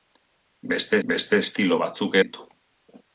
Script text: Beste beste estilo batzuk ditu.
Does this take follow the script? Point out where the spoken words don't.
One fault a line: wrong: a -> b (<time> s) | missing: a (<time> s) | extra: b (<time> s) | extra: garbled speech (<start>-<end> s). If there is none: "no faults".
no faults